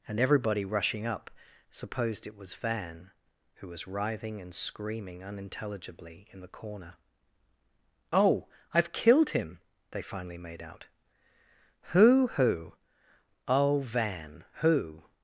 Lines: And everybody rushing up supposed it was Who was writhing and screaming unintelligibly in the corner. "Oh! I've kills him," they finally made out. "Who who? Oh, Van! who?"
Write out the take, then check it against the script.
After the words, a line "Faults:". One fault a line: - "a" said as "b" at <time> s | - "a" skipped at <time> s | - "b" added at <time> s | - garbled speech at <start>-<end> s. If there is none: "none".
And everybody rushing up supposed it was Van, who was writhing and screaming unintelligibly in the corner. "Oh! I've killed him," they finally made out. "Who who? Oh, Van! who?"
Faults:
- "Van" added at 2.5 s
- "kills" said as "killed" at 8.9 s